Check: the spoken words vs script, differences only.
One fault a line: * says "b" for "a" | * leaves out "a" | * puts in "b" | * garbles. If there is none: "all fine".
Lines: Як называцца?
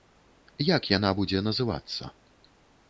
* puts in "яна будзе"